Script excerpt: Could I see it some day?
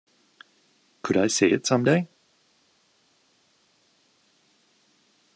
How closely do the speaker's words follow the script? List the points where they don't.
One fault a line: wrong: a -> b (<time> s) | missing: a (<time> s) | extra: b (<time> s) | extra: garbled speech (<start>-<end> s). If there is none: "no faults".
no faults